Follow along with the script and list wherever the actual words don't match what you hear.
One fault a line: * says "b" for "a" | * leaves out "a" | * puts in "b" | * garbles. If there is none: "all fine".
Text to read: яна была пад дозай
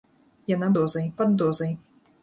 * says "дозай" for "была"